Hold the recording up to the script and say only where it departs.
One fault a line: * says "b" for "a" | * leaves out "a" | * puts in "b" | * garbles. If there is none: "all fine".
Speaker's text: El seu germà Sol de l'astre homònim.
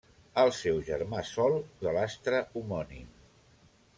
all fine